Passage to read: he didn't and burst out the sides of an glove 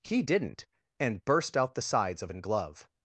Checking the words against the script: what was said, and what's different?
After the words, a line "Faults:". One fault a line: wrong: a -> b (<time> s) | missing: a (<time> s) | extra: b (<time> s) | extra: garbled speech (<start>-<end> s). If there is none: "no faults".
he didn't and burst out the sides of an glove
Faults:
no faults